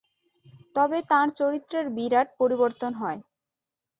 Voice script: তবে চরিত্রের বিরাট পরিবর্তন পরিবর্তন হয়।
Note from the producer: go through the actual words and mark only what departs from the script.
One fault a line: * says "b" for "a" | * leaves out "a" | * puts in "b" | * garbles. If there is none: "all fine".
* puts in "তাঁর"
* leaves out "পরিবর্তন"